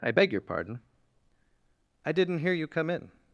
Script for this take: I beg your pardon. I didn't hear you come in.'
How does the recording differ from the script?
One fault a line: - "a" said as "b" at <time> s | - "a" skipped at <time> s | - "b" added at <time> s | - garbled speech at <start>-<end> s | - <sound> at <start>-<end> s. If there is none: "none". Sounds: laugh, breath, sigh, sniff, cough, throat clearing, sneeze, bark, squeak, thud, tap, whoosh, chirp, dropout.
none